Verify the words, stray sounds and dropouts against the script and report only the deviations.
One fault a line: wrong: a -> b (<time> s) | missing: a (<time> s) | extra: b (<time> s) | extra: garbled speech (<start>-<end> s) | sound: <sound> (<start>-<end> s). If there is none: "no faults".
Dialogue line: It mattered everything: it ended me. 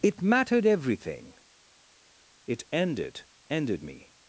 extra: ended (3.5 s)